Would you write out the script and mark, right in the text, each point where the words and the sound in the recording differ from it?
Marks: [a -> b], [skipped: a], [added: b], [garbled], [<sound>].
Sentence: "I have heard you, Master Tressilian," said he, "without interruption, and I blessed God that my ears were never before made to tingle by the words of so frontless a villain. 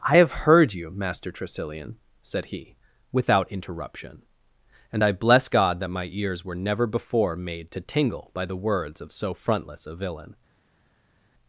"I have heard you, Master Tressilian," said he, "without interruption, and I [blessed -> bless] God that my ears were never before made to tingle by the words of so frontless a villain.